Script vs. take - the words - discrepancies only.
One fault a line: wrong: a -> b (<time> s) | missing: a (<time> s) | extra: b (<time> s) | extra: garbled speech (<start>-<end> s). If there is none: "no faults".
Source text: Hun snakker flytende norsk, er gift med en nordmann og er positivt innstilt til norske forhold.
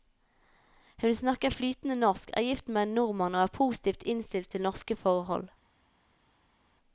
no faults